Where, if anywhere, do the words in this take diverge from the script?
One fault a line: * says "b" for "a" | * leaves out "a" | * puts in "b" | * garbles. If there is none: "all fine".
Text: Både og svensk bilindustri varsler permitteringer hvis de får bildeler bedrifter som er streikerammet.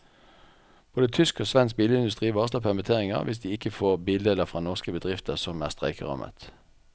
* puts in "tysk"
* puts in "ikke"
* puts in "fra norske"